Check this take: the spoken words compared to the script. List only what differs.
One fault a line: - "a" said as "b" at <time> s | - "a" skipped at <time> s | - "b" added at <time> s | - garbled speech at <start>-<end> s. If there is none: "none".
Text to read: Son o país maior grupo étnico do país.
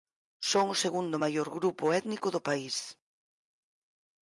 - "país" said as "segundo" at 0.8 s